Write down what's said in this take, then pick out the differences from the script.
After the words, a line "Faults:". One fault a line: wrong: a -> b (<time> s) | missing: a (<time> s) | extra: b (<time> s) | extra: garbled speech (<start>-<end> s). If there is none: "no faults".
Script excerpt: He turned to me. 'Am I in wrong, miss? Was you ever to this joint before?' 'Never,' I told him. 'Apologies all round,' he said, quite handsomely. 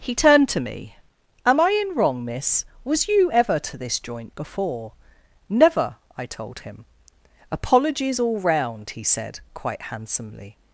He turned to me. 'Am I in wrong, miss? Was you ever to this joint before?' 'Never,' I told him. 'Apologies all round,' he said, quite handsomely.
Faults:
no faults